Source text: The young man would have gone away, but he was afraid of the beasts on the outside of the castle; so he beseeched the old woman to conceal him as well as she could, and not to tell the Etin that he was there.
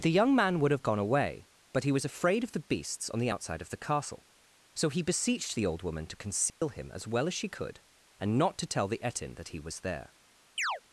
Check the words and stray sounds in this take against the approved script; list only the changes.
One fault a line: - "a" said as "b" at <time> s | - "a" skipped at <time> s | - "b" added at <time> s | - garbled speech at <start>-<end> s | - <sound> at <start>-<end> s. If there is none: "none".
- dropout at 6.5-6.6 s
- chirp at 10.6-10.8 s